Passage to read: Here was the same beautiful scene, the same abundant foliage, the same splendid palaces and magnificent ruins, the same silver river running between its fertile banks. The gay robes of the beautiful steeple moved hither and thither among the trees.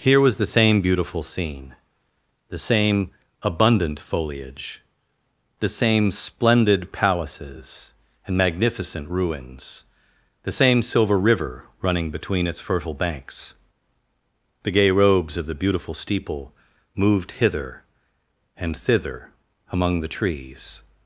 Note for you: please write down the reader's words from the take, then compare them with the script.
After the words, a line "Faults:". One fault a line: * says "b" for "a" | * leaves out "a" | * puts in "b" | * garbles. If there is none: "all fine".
Here was the same beautiful scene, the same abundant foliage, the same splendid palaces and magnificent ruins, the same silver river running between its fertile banks. The gay robes of the beautiful steeple moved hither and thither among the trees.
Faults:
all fine